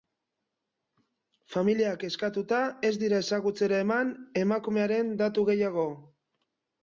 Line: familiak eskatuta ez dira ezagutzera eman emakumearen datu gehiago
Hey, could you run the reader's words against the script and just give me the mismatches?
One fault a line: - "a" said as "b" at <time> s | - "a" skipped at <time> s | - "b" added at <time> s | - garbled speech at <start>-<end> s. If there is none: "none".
none